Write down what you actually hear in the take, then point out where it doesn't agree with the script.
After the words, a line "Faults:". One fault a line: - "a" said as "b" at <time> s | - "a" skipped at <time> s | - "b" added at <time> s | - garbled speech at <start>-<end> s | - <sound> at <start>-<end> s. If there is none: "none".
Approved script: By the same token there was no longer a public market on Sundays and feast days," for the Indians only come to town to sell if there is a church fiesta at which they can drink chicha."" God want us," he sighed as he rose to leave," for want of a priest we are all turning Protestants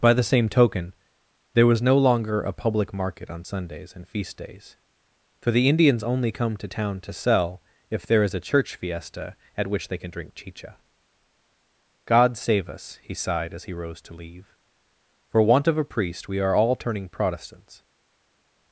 By the same token there was no longer a public market on Sundays and feast days," for the Indians only come to town to sell if there is a church fiesta at which they can drink chicha."" God save us," he sighed as he rose to leave," for want of a priest we are all turning Protestants
Faults:
- "want" said as "save" at 12.4 s